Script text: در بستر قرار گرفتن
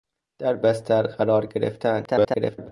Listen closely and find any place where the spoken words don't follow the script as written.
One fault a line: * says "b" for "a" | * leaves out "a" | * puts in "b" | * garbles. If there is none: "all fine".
* garbles